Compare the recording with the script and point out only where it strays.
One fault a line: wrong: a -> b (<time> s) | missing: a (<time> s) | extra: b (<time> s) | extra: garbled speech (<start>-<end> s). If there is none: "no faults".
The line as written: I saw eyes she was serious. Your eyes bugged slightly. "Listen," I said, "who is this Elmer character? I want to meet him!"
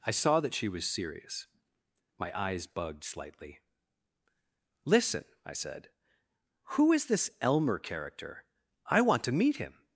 wrong: eyes -> that (0.4 s)
wrong: Your -> My (2.2 s)